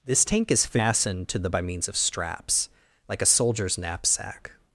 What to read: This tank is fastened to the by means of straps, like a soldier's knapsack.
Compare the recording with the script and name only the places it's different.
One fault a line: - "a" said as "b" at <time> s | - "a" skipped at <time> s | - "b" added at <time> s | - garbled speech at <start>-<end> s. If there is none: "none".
none